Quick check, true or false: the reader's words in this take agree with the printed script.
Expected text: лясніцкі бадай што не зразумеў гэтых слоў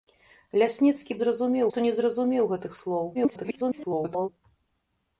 false